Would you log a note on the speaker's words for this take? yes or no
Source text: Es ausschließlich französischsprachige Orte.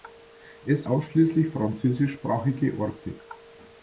no